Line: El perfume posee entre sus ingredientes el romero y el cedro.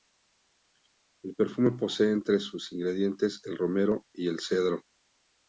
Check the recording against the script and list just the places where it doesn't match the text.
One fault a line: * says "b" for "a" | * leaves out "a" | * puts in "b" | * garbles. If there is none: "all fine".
all fine